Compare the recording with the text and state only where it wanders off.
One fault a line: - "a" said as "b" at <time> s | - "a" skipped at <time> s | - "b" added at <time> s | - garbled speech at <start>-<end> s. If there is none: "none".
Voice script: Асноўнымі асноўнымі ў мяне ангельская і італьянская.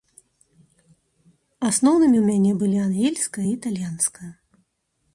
- "асноўнымі" skipped at 2.2 s
- "былі" added at 2.6 s